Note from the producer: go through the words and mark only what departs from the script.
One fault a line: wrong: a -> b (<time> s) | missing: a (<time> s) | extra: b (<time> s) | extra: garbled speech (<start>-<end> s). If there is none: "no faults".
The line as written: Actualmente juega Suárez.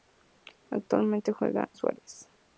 no faults